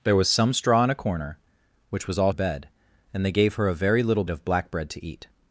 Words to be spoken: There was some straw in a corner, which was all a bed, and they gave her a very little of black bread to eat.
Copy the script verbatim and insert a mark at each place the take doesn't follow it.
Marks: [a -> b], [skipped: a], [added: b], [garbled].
There was some straw in a corner, which was all a bed, and they gave her a very little of black bread to eat.